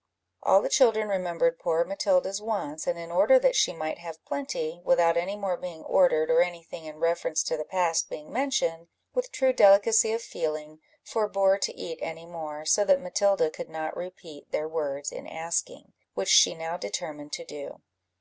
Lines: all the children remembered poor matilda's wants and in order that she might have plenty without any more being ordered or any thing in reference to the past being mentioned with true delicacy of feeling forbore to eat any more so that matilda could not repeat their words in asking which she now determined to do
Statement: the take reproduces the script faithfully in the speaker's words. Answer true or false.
true